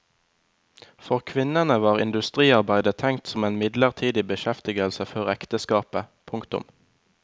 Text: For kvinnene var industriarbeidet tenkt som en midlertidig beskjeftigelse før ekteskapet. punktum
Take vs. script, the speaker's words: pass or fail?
pass